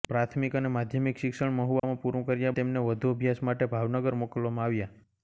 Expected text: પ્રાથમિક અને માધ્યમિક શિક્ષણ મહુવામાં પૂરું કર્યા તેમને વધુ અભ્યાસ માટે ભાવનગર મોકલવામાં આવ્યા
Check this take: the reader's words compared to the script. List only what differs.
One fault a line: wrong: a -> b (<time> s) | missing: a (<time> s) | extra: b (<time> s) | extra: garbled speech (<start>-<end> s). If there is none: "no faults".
no faults